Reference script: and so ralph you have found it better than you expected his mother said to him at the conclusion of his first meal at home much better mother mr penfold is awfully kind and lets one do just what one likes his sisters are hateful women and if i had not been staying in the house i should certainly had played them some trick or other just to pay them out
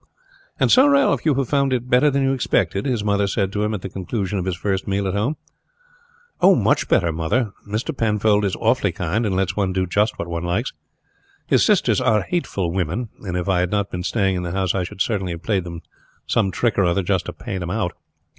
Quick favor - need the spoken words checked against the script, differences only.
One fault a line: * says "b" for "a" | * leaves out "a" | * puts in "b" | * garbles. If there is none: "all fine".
* says "have" for "had"